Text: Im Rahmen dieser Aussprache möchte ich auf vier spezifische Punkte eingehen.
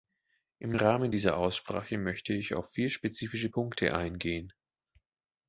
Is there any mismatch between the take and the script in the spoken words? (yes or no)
no